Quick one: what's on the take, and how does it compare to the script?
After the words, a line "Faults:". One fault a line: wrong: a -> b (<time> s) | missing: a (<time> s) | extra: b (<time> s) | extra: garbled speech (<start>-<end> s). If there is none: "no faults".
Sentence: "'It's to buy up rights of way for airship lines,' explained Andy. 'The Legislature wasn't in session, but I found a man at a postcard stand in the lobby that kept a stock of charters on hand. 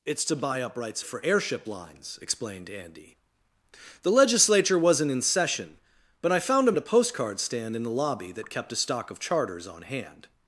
"'It's to buy up rights for airship lines,' explained Andy. 'The Legislature wasn't in session, but I found a at a postcard stand in the lobby that kept a stock of charters on hand.
Faults:
missing: of way (1.0 s)
missing: man (6.7 s)